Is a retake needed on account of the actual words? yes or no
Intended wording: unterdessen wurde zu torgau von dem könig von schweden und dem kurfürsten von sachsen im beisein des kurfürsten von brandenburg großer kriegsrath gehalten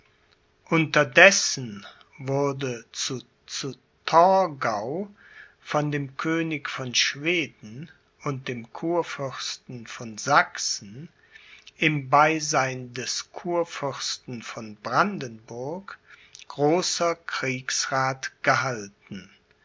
yes